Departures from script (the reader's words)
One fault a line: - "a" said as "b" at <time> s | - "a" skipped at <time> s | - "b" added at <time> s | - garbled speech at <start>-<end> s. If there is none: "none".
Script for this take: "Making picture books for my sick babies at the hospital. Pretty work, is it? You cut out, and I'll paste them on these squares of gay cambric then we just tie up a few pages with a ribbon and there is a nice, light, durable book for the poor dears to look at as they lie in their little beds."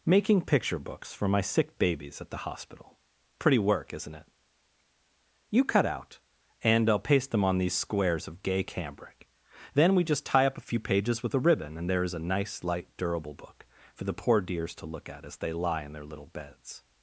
- "is" said as "isn't" at 3.9 s